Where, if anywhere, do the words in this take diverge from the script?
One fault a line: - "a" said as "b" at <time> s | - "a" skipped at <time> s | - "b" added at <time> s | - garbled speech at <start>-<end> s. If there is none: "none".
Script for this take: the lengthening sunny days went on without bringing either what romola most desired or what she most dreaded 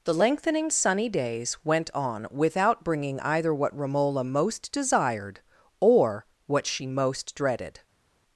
none